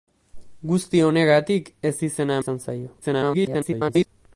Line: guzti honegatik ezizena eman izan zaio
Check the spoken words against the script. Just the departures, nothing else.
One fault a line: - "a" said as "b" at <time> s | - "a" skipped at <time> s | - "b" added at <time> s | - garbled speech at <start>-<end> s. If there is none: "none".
- "eman" skipped at 2.4 s
- garbled speech at 3.0-4.1 s